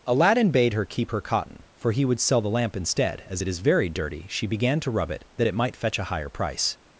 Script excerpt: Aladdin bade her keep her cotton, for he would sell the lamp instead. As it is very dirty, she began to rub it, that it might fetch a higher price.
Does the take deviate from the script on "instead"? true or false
false